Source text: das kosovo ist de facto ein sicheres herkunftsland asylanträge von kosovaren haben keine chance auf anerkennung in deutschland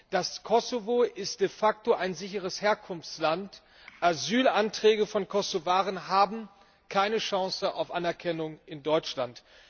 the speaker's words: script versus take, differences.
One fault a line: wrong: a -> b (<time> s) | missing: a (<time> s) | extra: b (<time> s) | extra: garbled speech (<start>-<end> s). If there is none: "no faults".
no faults